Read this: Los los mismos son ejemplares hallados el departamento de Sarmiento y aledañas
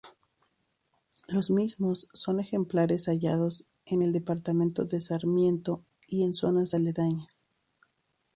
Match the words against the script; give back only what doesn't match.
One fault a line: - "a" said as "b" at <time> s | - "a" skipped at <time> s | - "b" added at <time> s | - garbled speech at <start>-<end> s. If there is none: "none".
- "los" skipped at 1.5 s
- "en" added at 3.9 s
- "en zonas" added at 6.2 s